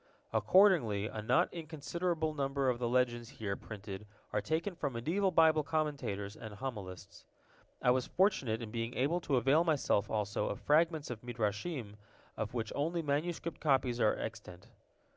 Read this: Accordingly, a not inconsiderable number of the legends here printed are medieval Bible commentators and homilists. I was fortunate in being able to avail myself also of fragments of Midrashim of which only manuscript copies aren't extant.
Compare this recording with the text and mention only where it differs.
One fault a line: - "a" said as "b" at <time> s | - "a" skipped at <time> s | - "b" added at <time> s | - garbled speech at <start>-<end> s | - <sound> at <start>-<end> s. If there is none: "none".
- "taken from" added at 4.4 s
- "aren't" said as "are" at 14.0 s